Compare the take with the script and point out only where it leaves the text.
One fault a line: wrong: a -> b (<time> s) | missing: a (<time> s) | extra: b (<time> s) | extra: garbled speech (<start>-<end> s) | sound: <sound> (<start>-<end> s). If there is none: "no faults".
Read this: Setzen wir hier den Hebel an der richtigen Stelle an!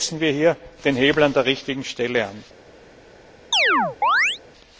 sound: chirp (3.5-4.4 s)